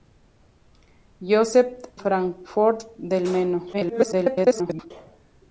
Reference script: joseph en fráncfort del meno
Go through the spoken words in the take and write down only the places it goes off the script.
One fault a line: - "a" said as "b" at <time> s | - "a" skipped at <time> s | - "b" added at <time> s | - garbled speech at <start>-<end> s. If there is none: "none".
- "en" skipped at 1.8 s
- garbled speech at 3.7-4.9 s